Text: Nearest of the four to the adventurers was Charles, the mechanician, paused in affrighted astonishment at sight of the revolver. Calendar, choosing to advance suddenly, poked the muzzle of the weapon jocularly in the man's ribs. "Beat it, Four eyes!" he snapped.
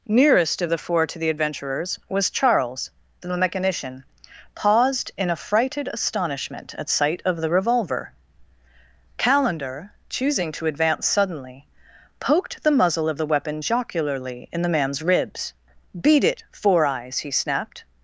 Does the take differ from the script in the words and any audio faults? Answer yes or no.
no